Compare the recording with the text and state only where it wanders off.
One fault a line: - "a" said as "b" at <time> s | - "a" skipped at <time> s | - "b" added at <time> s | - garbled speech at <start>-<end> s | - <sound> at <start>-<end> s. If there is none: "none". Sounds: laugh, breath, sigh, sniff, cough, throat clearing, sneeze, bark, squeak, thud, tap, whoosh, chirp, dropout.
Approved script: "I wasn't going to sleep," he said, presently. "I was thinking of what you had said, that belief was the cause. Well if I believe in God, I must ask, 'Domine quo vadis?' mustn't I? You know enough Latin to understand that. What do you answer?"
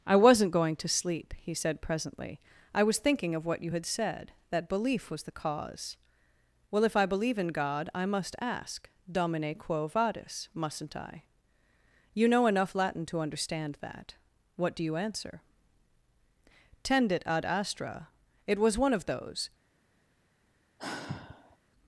- "Tendit ad astra It was one of those" added at 16.8 s
- sigh at 20.8-21.6 s